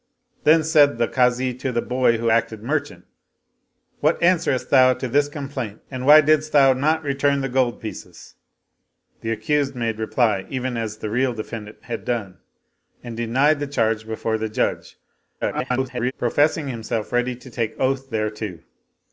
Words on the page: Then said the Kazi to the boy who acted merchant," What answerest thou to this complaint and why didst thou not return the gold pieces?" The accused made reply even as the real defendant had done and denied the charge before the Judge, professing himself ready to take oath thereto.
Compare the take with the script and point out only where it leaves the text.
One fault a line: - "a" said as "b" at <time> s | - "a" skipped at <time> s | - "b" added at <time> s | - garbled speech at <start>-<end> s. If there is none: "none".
- garbled speech at 15.4-16.1 s